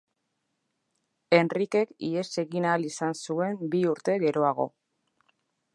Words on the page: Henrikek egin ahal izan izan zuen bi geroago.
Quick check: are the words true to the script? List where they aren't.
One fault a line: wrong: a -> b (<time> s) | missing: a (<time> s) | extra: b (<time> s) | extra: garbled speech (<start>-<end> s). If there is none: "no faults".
extra: ihes (2.1 s)
missing: izan (3.2 s)
extra: urte (3.9 s)